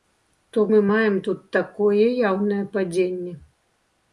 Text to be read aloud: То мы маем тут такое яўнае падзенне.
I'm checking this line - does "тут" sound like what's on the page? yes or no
yes